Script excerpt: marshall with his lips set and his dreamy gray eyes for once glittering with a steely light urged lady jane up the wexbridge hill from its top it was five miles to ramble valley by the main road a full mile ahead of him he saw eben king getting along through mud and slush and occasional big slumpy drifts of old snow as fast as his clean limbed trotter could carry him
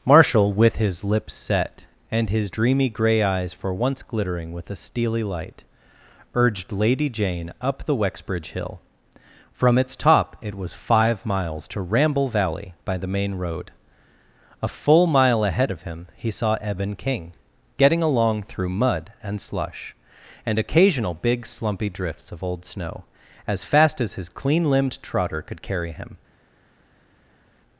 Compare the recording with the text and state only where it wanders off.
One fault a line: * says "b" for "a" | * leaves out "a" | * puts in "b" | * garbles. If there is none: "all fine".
all fine